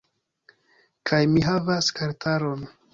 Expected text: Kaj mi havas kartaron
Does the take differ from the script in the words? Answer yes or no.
no